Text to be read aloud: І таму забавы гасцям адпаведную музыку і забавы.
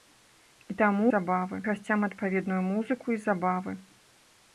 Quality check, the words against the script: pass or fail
pass